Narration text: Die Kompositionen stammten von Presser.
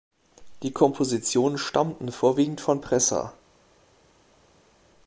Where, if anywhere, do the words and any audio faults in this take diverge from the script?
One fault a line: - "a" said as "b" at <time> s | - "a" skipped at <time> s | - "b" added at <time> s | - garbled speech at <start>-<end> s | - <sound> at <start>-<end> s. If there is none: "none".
- "vorwiegend" added at 2.1 s